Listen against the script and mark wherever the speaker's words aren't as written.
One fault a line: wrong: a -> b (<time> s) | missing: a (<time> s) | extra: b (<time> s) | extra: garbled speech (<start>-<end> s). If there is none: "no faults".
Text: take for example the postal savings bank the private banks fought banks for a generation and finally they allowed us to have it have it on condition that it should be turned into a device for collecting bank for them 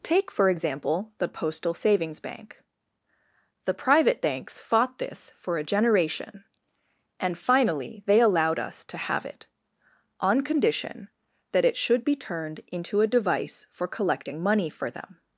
wrong: banks -> this (5.0 s)
missing: have it (9.5 s)
wrong: bank -> money (14.4 s)